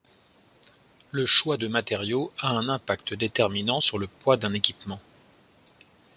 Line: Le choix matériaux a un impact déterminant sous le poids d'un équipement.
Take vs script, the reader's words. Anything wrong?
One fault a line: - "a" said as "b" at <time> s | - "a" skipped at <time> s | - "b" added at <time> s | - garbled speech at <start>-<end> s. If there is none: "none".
- "de" added at 1.6 s
- "sous" said as "sur" at 3.8 s